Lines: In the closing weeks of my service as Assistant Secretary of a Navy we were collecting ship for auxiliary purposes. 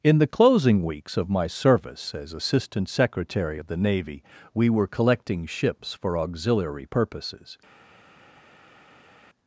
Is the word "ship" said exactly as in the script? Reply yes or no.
no